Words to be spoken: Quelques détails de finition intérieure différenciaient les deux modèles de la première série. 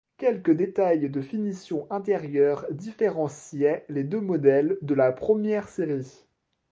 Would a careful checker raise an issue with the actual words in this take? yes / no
no